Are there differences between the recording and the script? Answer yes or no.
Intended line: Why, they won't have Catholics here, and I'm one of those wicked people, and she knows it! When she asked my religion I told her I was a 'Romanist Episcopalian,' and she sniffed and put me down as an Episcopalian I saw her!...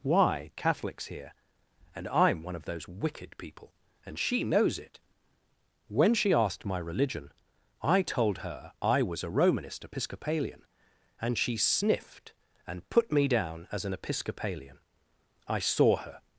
yes